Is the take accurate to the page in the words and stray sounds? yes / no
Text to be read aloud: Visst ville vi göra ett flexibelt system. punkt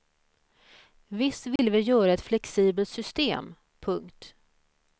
no